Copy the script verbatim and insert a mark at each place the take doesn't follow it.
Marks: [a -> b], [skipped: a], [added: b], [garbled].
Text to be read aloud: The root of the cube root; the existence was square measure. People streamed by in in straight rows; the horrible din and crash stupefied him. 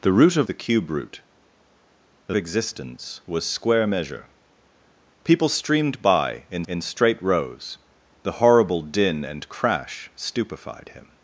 The root of the cube root; the existence was square measure. People streamed by in in straight rows; the horrible din and crash stupefied him.